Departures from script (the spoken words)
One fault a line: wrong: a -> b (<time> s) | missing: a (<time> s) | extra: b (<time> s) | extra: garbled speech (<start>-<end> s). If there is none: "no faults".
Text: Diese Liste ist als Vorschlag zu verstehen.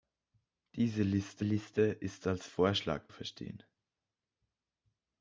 extra: Liste (1.4 s)
missing: zu (3.1 s)